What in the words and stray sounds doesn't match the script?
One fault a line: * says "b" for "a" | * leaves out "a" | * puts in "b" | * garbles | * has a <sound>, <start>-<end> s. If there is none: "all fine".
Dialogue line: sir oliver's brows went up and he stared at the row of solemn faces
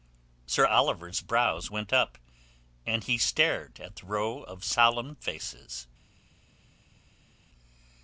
all fine